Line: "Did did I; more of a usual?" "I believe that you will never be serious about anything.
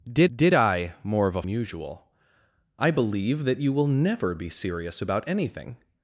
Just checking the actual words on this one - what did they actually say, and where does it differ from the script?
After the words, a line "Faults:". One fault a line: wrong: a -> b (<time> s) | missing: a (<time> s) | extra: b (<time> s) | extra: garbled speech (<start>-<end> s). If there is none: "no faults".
"Did did I; more of a usual?" "I believe that you will never be serious about anything.
Faults:
no faults